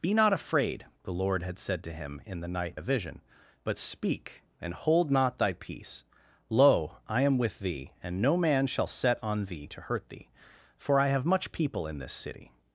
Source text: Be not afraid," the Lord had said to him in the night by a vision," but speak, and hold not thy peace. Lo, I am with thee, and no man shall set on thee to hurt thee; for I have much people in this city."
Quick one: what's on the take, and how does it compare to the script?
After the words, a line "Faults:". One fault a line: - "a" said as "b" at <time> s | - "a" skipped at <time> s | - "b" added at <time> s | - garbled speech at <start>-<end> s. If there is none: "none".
Be not afraid," the Lord had said to him in the night a vision," but speak, and hold not thy peace. Lo, I am with thee, and no man shall set on thee to hurt thee; for I have much people in this city."
Faults:
- "by" skipped at 2.8 s